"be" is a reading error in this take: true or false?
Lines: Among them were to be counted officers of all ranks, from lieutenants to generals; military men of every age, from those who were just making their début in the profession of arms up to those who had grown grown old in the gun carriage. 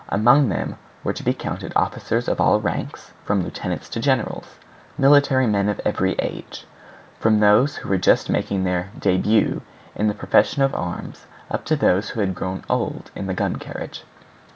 false